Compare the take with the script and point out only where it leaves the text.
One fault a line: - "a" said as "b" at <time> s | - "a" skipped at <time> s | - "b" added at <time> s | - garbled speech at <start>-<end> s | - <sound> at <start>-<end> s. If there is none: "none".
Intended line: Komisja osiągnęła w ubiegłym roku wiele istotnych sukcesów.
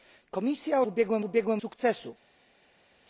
- "osiągnęła" said as "ubiegłym" at 0.9 s
- "roku wiele istotnych" skipped at 1.6 s